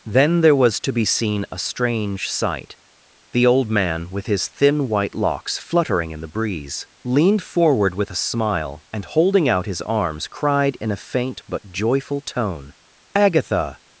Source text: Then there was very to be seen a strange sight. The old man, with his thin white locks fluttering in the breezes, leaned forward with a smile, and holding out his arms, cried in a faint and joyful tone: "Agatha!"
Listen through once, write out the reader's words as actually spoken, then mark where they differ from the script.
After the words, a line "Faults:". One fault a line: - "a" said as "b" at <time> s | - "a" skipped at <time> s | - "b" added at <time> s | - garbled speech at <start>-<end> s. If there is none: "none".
Then there was to be seen a strange sight. The old man, with his thin white locks fluttering in the breeze, leaned forward with a smile, and holding out his arms, cried in a faint but joyful tone: "Agatha!"
Faults:
- "very" skipped at 0.8 s
- "breezes" said as "breeze" at 6.3 s
- "and" said as "but" at 11.5 s